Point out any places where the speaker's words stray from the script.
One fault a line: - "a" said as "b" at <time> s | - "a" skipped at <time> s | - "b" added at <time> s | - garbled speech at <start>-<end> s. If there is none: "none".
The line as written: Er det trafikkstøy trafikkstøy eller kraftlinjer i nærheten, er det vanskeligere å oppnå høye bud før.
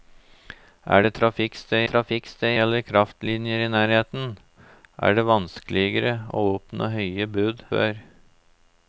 none